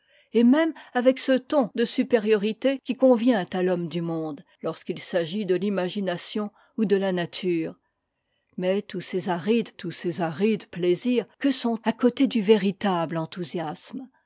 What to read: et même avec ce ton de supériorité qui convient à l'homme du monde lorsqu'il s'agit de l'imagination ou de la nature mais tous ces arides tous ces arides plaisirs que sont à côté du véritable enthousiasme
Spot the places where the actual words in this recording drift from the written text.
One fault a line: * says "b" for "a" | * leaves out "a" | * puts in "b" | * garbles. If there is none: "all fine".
all fine